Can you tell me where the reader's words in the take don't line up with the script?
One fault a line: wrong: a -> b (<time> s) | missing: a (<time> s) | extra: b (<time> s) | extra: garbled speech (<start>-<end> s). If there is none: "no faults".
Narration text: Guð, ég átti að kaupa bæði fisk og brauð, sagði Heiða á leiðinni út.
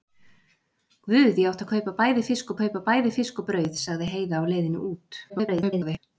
extra: kaupa bæði fisk (2.6 s)
extra: garbled speech (5.3-6.0 s)